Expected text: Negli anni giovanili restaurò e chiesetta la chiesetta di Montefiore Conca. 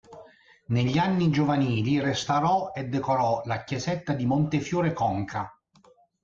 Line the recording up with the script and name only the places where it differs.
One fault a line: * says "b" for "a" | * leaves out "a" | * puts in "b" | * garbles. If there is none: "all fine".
* says "decorò" for "chiesetta"